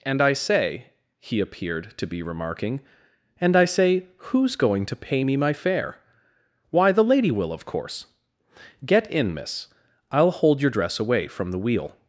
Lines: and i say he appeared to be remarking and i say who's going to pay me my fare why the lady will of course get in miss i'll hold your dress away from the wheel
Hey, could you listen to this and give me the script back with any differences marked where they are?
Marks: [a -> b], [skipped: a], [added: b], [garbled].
and i say he appeared to be remarking and i say who's going to pay me my fare why the lady will of course get in miss i'll hold your dress away from the wheel